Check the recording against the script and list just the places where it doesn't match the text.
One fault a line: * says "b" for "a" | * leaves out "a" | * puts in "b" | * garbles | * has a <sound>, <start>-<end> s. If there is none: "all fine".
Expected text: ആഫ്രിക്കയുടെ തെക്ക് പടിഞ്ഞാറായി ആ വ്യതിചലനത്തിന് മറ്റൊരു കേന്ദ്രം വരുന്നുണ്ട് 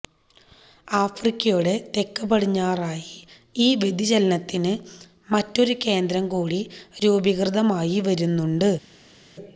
* says "ഈ" for "ആ"
* puts in "കൂടി രൂപീകൃതമായി"